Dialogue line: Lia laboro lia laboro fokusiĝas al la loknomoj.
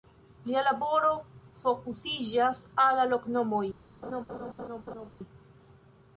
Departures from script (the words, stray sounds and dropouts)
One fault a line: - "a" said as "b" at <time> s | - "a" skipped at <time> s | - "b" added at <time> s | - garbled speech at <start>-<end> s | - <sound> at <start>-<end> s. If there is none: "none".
- "lia laboro" skipped at 1.1 s
- laugh at 4.0-5.1 s